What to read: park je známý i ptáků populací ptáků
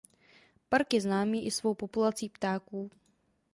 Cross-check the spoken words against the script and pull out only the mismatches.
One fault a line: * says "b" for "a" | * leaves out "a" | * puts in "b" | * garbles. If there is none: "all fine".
* says "svou" for "ptáků"